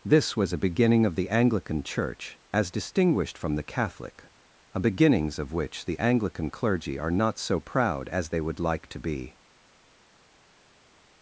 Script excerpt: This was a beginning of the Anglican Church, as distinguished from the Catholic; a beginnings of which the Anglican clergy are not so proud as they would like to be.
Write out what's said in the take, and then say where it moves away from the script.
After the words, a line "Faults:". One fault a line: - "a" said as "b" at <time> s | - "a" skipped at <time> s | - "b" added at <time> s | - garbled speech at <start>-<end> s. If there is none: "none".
This was a beginning of the Anglican Church, as distinguished from the Catholic; a beginnings of which the Anglican clergy are not so proud as they would like to be.
Faults:
none